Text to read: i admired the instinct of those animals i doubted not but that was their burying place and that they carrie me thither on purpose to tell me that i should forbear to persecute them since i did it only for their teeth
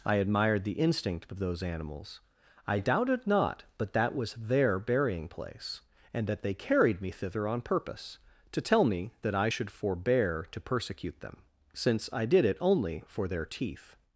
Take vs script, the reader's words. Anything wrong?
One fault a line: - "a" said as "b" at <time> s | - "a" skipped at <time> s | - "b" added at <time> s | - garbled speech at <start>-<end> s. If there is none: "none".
- "carrie" said as "carried" at 6.5 s